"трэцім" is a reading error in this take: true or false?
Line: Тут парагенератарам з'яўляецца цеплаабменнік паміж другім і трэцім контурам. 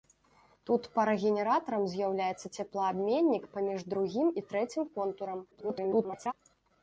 false